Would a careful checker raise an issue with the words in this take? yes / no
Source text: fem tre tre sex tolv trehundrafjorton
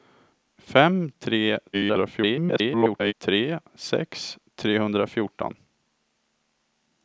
yes